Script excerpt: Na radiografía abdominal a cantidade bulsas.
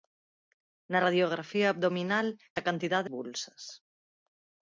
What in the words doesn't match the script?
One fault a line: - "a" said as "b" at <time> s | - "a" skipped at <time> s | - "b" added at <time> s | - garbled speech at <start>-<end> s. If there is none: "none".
none